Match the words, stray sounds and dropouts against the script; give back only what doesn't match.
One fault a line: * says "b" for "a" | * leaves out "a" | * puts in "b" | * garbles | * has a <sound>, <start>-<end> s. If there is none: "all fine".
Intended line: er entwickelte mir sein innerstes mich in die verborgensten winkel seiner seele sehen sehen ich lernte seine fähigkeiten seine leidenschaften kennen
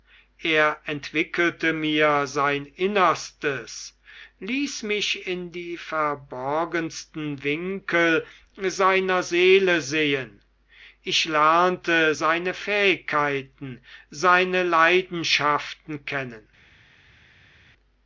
* puts in "ließ"
* leaves out "sehen"